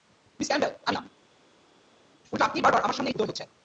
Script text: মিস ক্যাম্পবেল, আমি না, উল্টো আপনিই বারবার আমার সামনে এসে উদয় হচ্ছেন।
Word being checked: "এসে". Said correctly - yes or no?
no